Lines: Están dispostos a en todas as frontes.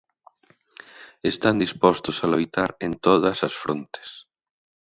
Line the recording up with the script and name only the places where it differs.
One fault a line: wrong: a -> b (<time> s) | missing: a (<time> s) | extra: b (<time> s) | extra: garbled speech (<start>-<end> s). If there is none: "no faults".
extra: loitar (2.3 s)